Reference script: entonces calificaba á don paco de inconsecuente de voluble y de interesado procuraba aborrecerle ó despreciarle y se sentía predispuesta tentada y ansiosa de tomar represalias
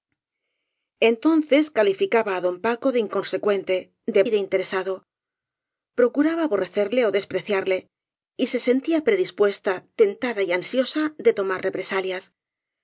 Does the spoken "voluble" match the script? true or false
false